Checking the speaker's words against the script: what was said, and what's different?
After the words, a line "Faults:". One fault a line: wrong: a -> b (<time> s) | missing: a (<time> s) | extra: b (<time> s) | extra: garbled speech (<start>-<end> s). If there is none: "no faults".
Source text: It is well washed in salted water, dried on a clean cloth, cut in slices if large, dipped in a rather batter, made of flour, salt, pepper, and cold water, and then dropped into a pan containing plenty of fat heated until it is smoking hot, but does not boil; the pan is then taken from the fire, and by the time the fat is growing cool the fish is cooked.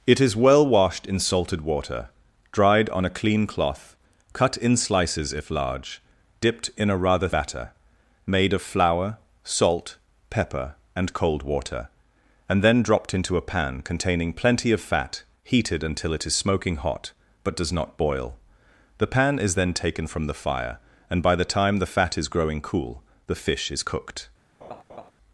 It is well washed in salted water, dried on a clean cloth, cut in slices if large, dipped in a rather batter, made of flour, salt, pepper, and cold water, and then dropped into a pan containing plenty of fat heated until it is smoking hot, but does not boil; the pan is then taken from the fire, and by the time the fat is growing cool the fish is cooked.
Faults:
no faults